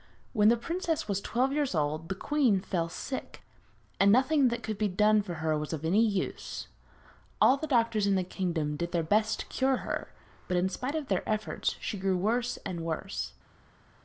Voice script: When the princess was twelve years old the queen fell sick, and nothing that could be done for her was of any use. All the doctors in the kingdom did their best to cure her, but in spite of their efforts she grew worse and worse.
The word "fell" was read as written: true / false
true